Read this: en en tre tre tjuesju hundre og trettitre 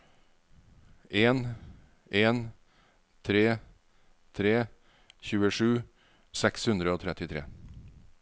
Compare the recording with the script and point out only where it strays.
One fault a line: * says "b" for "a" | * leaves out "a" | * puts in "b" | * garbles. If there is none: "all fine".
* puts in "seks"